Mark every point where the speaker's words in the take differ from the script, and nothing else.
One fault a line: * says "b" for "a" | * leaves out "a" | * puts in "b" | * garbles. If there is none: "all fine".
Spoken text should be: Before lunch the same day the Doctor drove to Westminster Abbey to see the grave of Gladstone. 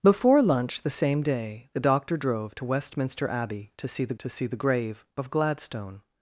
* puts in "to see the"